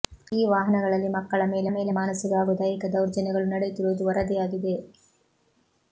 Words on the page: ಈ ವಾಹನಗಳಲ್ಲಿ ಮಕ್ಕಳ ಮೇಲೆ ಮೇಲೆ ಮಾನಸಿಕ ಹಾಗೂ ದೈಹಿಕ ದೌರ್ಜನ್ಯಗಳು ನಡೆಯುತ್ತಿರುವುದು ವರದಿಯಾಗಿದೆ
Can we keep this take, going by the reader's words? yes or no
yes